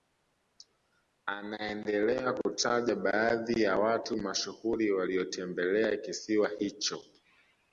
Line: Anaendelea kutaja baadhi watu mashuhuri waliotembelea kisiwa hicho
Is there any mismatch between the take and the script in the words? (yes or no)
yes